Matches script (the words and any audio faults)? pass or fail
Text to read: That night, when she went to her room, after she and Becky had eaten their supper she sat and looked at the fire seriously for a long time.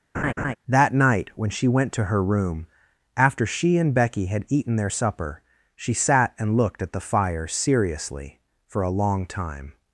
fail